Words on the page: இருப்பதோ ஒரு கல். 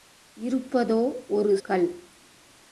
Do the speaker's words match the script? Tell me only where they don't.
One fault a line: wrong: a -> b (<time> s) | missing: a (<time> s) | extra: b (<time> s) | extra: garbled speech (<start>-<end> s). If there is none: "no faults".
no faults